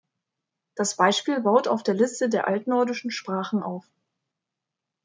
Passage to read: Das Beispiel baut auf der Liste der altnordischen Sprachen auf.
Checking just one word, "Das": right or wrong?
right